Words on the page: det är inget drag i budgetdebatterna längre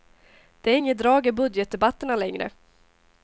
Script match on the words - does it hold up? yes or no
yes